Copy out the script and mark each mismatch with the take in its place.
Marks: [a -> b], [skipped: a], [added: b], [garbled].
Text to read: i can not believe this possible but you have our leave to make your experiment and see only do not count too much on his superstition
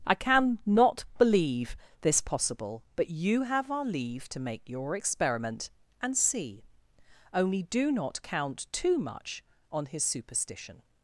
i can not believe this possible but you have our leave to make your experiment and see only do not count too much on his superstition